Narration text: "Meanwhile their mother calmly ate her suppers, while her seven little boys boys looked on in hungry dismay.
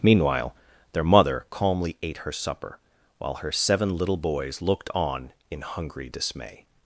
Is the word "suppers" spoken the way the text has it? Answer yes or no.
no